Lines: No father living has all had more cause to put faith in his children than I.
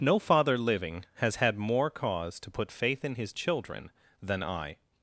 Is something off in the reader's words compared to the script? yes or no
yes